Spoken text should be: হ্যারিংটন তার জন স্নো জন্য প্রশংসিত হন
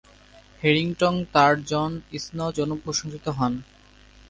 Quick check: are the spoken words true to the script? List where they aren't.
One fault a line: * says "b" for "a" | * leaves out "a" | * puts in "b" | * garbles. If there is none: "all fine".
all fine